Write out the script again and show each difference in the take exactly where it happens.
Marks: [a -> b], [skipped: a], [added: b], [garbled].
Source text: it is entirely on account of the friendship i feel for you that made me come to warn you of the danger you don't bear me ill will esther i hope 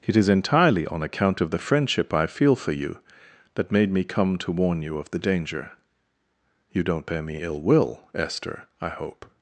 it is entirely on account of the friendship i feel for you that made me come to warn you of the danger you don't bear me ill will esther i hope